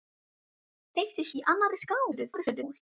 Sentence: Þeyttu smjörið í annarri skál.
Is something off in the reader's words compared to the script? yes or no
yes